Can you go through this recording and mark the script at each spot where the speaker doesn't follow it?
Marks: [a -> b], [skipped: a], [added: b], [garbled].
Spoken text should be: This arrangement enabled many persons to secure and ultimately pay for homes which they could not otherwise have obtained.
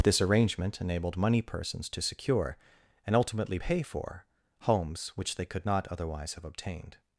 This arrangement enabled [many -> money] persons to secure and ultimately pay for homes which they could not otherwise have obtained.